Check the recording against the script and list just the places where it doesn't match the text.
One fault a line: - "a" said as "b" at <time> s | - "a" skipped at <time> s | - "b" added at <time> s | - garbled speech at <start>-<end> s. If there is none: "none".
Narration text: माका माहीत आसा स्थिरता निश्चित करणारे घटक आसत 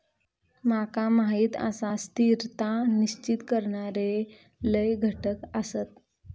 - "लय" added at 4.6 s